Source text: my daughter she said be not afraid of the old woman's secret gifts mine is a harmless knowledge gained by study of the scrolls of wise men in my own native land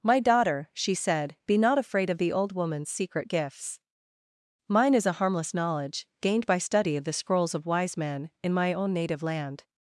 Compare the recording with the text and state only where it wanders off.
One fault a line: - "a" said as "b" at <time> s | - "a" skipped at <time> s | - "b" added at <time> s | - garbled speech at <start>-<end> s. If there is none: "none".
none